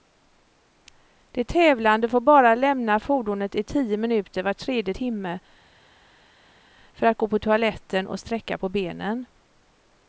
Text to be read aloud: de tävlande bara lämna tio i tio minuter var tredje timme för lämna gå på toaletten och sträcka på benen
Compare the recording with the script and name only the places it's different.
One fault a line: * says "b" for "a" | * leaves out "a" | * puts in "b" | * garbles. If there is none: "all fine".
* puts in "får"
* says "fordonet" for "tio"
* says "att" for "lämna"